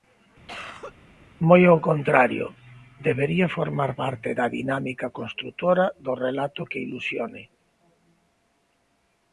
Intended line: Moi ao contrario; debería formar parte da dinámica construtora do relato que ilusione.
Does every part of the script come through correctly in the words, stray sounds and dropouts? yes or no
no